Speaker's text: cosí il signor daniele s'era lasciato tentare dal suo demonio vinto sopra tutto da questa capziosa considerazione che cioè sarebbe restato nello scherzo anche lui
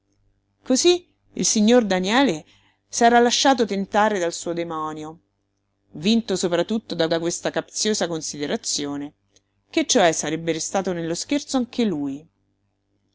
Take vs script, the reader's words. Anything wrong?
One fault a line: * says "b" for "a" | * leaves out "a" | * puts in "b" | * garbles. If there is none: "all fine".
* puts in "da"